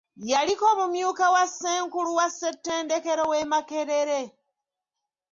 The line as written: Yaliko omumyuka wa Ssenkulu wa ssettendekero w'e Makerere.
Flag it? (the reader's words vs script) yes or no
no